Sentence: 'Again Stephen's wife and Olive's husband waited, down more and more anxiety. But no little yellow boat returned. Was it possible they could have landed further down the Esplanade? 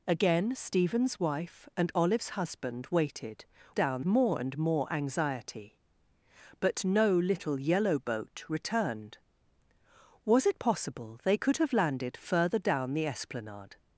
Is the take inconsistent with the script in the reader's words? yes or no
no